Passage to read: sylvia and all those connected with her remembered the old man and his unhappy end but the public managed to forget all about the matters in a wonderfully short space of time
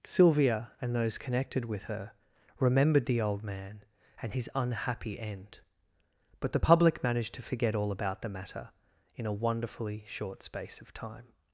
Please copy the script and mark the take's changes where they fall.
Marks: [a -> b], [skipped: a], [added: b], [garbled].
sylvia and [skipped: all] those connected with her remembered the old man and his unhappy end but the public managed to forget all about the [matters -> matter] in a wonderfully short space of time